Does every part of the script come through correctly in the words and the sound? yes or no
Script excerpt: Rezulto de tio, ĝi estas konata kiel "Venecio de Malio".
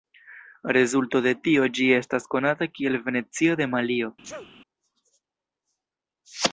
no